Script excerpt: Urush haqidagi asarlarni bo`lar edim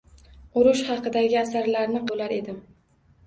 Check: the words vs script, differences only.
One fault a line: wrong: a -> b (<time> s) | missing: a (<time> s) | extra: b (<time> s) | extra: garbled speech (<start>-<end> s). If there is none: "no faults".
no faults